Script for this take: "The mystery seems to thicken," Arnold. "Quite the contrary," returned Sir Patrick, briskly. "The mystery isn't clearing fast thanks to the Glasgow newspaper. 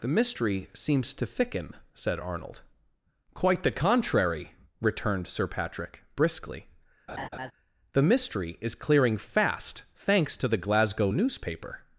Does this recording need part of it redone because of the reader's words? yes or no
yes